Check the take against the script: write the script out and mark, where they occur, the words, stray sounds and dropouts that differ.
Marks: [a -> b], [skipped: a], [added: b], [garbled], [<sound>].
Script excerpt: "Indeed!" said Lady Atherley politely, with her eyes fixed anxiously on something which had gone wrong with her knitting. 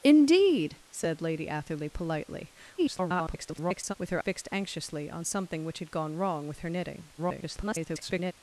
"Indeed!" said Lady Atherley politely, [garbled] with her [skipped: eyes] fixed anxiously on something which had gone wrong with her knitting. [garbled]